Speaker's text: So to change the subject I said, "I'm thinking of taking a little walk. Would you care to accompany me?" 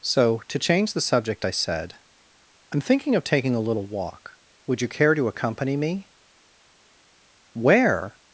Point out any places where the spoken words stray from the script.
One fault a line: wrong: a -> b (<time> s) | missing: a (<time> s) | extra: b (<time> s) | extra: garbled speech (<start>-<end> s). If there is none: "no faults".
extra: Where (7.5 s)